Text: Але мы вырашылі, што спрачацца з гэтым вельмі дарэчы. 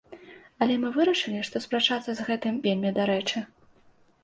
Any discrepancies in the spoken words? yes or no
no